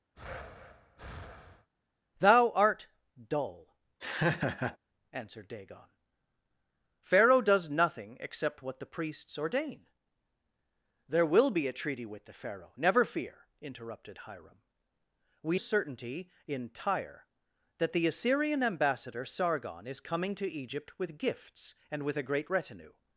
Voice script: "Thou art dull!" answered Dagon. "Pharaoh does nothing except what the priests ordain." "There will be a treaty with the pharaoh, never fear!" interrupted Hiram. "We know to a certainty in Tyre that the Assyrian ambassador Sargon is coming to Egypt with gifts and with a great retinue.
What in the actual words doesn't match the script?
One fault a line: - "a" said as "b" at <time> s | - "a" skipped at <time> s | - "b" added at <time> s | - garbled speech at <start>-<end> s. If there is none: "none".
- "know to" skipped at 15.6 s